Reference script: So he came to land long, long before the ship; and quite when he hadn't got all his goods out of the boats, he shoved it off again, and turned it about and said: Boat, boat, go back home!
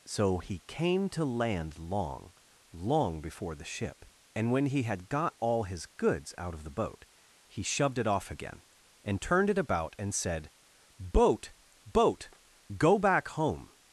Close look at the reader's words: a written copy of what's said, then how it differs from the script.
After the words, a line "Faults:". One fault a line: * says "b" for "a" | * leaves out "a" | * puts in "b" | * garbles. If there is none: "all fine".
So he came to land long, long before the ship; and when he had got all his goods out of the boat, he shoved it off again, and turned it about and said: Boat, boat, go back home!
Faults:
* leaves out "quite"
* says "had" for "hadn't"
* says "boat" for "boats"